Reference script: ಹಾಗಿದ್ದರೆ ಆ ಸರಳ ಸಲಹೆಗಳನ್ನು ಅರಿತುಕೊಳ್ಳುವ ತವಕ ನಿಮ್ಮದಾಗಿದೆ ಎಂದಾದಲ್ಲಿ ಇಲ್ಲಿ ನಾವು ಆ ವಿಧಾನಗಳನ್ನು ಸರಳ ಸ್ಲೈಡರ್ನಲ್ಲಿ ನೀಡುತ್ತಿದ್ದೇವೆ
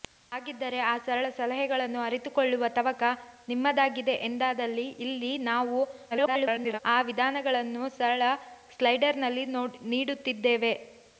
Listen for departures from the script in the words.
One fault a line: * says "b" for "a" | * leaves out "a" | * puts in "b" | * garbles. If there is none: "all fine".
* garbles